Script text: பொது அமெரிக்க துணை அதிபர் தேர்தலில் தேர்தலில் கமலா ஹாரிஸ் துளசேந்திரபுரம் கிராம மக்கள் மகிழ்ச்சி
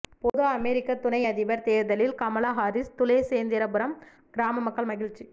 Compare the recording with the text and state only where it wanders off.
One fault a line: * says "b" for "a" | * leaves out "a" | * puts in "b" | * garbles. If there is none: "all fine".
* leaves out "தேர்தலில்"